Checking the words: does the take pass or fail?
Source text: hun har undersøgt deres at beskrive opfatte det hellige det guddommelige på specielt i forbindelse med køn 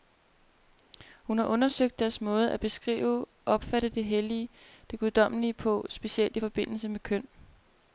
fail